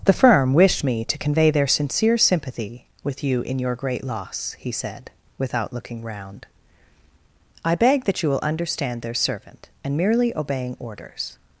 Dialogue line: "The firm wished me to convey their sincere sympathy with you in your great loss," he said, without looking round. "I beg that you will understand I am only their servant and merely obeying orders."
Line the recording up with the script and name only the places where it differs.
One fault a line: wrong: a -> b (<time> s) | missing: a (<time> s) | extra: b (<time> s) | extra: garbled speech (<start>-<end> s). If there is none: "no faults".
missing: I am only (9.0 s)